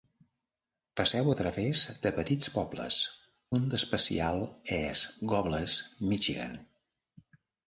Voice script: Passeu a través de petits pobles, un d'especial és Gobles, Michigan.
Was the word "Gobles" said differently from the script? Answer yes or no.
no